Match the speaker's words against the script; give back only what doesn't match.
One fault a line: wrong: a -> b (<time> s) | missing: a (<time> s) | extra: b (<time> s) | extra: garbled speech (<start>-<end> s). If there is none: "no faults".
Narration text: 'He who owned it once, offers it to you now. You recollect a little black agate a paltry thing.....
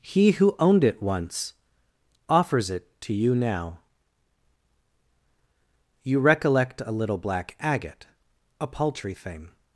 no faults